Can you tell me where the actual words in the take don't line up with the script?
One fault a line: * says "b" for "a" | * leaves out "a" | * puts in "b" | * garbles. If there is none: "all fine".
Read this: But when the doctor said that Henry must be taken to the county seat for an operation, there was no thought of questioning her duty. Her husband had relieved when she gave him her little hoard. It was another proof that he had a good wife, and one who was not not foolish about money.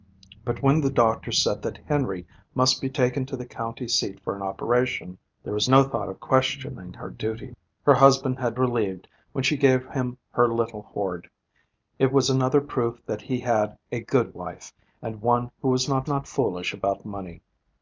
all fine